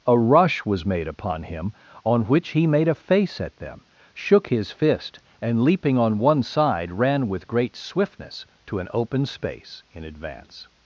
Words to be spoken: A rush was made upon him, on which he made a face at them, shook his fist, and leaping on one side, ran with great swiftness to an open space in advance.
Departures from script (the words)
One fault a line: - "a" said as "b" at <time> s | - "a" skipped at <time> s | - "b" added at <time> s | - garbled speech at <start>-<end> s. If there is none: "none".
none